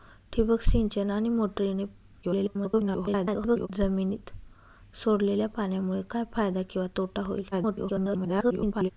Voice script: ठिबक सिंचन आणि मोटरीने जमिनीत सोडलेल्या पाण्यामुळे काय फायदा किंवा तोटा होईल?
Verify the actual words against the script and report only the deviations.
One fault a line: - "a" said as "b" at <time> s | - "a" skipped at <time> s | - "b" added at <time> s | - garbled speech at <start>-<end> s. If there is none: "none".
- garbled speech at 2.2-3.7 s
- garbled speech at 7.5-8.9 s